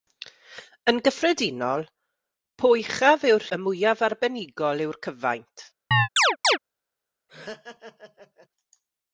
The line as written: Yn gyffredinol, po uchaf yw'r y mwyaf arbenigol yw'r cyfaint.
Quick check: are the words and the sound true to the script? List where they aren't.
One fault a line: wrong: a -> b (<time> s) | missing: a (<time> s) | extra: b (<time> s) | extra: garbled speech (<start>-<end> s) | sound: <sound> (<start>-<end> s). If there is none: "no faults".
sound: chirp (5.9-6.6 s)
sound: laugh (7.3-8.5 s)